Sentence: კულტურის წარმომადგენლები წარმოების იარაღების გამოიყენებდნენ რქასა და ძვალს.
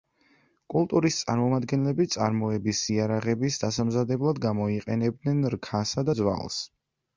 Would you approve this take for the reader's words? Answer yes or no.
no